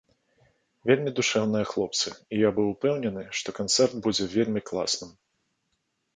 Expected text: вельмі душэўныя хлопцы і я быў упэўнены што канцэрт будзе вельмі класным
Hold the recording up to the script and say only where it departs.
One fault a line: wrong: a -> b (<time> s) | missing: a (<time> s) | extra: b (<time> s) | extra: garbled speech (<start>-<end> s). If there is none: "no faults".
no faults